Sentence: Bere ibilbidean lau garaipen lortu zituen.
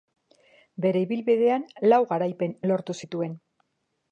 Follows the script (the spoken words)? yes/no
yes